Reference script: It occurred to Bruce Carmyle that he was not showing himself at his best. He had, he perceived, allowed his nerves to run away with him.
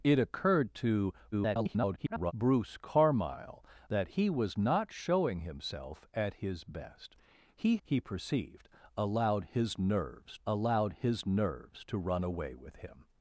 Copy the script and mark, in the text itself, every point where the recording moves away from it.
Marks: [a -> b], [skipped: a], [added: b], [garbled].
It occurred to [garbled] Bruce Carmyle that he was not showing himself at his best. He [skipped: had,] he perceived, allowed his nerves [added: allowed his nerves] to run away with him.